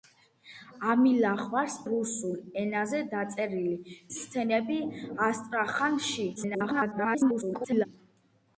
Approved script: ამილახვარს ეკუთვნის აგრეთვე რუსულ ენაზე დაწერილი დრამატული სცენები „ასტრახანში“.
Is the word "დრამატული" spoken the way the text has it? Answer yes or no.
no